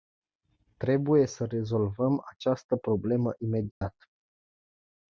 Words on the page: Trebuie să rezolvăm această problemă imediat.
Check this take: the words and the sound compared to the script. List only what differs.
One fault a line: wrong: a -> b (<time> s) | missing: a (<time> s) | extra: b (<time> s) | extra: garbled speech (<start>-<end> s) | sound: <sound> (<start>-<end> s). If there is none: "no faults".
sound: dropout (3.7-3.8 s)